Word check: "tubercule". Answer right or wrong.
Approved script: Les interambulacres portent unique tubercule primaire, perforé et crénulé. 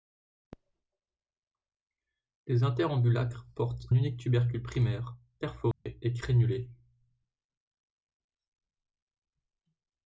right